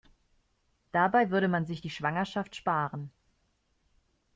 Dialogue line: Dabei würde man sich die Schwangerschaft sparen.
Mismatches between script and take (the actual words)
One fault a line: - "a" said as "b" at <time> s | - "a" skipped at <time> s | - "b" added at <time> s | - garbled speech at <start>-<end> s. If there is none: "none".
none